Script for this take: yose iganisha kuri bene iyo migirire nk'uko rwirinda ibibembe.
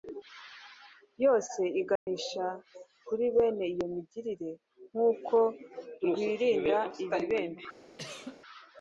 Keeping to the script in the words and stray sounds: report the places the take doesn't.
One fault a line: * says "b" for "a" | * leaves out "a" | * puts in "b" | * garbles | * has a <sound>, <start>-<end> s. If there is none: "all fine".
* has a dropout, 2.0-2.1 s
* has a cough, 8.0-8.4 s